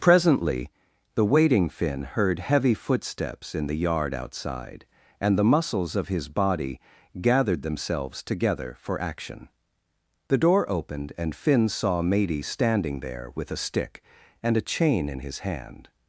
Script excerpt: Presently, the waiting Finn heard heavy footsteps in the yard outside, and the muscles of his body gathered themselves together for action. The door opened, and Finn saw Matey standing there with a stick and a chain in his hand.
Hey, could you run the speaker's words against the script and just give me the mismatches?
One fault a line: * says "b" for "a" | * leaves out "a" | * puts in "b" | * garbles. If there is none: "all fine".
all fine